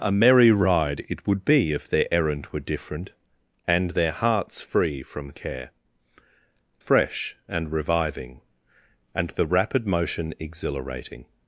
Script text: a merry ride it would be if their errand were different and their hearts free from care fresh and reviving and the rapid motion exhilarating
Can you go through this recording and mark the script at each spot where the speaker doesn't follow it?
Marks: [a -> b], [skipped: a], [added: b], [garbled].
a merry ride it would be if their errand were different and their hearts free from care fresh and reviving and the rapid motion exhilarating